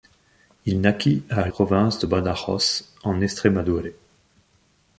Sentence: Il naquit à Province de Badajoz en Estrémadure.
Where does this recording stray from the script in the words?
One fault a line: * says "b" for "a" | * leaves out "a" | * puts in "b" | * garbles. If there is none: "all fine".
all fine